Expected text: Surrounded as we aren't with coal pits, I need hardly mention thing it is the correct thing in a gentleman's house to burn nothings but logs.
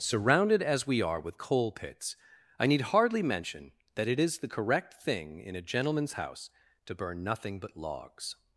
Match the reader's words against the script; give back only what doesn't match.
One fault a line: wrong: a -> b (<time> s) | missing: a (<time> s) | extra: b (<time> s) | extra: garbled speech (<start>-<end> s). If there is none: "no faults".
wrong: aren't -> are (1.0 s)
wrong: thing -> that (3.9 s)
wrong: nothings -> nothing (7.2 s)